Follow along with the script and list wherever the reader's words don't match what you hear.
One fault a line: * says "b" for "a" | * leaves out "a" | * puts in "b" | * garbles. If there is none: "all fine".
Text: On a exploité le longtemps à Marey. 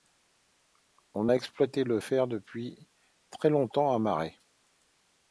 * puts in "fer depuis très"